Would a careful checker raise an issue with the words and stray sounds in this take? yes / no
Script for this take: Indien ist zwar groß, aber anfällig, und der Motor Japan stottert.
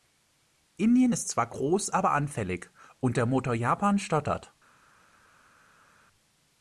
no